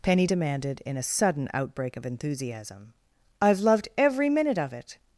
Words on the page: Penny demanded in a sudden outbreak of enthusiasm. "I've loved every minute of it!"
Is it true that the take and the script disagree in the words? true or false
false